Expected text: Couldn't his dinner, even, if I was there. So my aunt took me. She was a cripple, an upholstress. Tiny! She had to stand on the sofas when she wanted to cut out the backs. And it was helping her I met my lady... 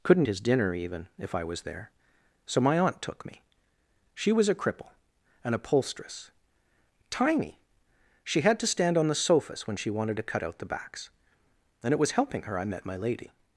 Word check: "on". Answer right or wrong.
right